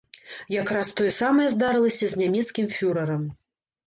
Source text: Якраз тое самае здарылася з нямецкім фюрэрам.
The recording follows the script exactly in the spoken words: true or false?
true